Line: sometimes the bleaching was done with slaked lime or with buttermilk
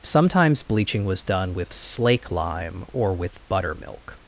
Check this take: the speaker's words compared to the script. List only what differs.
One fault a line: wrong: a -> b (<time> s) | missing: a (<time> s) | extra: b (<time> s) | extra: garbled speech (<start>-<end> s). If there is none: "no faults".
missing: the (0.6 s)
wrong: slaked -> slake (1.7 s)